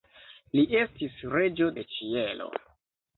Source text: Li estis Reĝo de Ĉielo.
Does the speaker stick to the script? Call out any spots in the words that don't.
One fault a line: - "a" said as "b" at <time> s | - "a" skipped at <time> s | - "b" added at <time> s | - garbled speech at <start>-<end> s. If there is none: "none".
none